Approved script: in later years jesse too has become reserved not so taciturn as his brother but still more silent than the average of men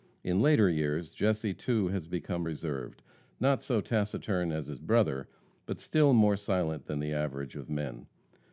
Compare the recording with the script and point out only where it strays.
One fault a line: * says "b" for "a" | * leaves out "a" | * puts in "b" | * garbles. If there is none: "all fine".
all fine